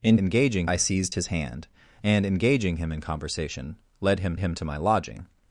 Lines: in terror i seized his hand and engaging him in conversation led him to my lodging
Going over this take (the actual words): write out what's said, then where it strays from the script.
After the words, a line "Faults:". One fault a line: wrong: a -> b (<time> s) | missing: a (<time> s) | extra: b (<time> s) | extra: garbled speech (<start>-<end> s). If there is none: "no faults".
in engaging i seized his hand and engaging him in conversation led him him to my lodging
Faults:
wrong: terror -> engaging (0.2 s)
extra: him (4.4 s)